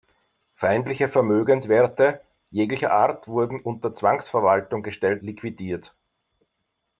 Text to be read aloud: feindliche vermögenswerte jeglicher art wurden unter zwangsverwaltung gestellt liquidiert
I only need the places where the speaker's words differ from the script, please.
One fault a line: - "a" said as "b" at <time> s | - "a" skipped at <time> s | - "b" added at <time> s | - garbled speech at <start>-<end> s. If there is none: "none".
none